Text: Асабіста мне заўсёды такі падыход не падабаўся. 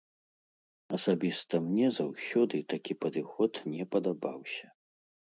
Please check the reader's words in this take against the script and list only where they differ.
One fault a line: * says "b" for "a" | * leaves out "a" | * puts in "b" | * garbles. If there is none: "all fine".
all fine